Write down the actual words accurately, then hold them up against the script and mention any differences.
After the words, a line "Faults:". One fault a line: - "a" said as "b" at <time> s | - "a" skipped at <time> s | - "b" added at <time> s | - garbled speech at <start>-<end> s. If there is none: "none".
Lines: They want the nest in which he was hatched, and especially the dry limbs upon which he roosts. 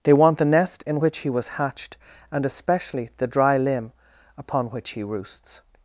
They want the nest in which he was hatched, and especially the dry limb upon which he roosts.
Faults:
- "limbs" said as "limb" at 3.6 s